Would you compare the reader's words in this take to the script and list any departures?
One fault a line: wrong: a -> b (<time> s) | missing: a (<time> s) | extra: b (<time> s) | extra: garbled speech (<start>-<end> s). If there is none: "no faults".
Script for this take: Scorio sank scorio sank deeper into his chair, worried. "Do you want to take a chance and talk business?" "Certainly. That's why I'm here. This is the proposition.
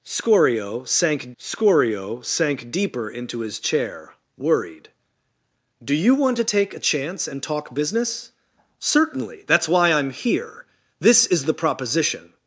no faults